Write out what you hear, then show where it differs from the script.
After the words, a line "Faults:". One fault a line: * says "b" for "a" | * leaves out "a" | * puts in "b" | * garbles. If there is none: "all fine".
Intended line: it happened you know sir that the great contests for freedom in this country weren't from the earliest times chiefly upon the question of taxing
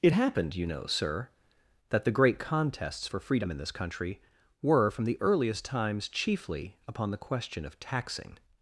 it happened you know sir that the great contests for freedom in this country were from the earliest times chiefly upon the question of taxing
Faults:
* says "were" for "weren't"